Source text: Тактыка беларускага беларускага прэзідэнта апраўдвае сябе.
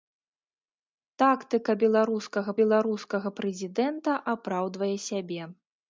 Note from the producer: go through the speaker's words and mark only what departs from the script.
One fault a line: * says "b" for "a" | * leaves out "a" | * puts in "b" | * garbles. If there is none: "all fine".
all fine